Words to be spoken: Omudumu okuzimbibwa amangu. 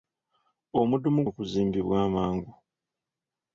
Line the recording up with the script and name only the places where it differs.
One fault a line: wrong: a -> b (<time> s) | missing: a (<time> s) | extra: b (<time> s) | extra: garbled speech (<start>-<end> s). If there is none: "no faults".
no faults